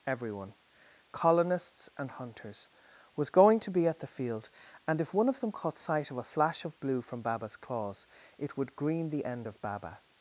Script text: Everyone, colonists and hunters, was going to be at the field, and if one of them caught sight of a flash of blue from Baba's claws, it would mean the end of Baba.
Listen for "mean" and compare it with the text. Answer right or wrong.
wrong